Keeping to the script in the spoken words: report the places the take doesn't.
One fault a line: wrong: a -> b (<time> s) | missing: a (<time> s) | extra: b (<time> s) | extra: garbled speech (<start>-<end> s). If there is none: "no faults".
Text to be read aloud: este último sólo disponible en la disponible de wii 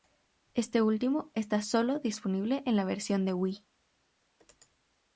extra: está (1.4 s)
wrong: disponible -> versión (2.8 s)